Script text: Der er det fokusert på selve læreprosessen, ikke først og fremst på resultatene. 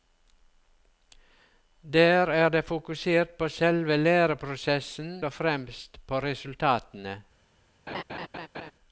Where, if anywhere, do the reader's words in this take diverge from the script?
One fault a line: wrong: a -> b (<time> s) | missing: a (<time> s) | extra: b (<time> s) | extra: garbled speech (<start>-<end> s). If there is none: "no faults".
missing: ikke først (5.2 s)